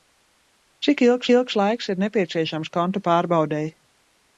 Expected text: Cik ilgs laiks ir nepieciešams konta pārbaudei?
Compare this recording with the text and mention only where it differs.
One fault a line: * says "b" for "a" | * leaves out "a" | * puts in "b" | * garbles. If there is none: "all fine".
* puts in "ilgs"